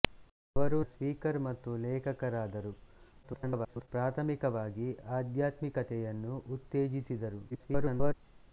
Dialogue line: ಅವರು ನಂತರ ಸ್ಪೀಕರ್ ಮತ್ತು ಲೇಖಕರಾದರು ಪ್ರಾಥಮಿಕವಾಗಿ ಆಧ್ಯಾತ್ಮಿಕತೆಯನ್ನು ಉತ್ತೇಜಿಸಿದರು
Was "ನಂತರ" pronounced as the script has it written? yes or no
no